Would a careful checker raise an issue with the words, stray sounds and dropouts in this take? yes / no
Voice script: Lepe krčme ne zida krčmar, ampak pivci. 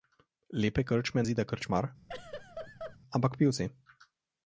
yes